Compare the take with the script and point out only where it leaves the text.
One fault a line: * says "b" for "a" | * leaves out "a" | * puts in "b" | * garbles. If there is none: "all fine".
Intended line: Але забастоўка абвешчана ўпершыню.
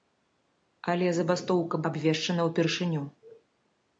all fine